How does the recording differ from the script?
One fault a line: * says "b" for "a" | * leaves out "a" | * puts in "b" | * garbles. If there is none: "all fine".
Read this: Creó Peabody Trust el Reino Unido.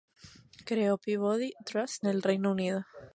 all fine